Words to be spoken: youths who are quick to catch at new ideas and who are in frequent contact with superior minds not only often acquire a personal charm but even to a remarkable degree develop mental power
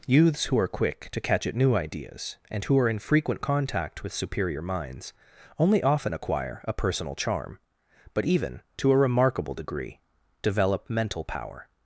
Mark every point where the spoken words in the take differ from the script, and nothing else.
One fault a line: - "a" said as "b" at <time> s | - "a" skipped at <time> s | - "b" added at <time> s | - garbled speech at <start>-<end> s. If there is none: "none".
- "not" skipped at 5.1 s